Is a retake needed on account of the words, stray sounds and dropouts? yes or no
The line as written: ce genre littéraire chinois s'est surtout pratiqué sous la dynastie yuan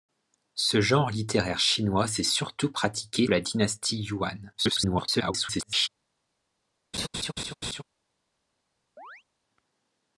yes